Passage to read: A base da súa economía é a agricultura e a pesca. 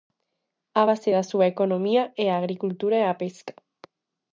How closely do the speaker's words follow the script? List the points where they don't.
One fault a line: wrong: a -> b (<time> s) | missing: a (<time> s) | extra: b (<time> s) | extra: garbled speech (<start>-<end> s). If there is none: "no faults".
no faults